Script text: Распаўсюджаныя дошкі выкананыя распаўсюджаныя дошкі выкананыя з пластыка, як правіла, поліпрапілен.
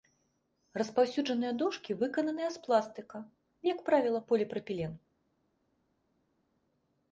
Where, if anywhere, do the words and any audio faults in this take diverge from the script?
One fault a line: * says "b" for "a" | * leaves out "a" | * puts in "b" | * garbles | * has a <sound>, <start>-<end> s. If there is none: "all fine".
* leaves out "распаўсюджаныя дошкі выкананыя"